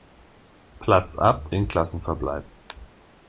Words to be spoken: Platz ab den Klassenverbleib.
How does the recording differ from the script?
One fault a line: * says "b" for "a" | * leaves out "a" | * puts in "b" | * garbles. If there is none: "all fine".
all fine